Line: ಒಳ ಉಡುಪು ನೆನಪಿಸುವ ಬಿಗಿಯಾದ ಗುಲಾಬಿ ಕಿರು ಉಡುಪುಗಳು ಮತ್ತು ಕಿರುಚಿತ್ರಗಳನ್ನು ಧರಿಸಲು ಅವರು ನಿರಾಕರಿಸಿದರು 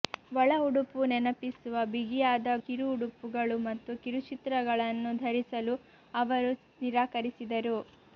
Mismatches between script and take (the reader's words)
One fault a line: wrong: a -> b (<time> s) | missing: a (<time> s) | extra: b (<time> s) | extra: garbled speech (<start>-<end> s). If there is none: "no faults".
missing: ಗುಲಾಬಿ (2.5 s)